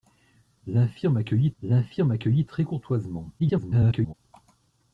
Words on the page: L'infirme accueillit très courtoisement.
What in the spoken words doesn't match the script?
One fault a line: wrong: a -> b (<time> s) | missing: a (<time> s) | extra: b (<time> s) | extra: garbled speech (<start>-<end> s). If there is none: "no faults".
extra: l'infirme accueillit (1.6 s)
extra: garbled speech (3.4-4.1 s)